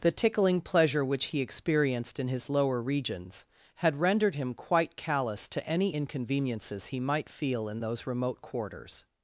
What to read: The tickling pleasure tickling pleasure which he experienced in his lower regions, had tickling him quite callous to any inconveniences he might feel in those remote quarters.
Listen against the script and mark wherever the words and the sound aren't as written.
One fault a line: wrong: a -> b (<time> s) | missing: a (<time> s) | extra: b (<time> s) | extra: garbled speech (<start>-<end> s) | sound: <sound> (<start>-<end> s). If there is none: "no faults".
missing: tickling pleasure (1.1 s)
wrong: tickling -> rendered (4.0 s)